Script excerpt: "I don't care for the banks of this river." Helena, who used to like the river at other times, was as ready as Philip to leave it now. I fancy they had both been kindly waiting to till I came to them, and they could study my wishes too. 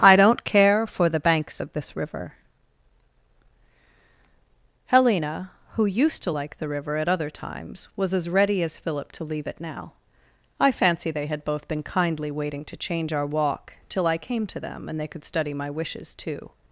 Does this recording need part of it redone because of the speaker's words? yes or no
yes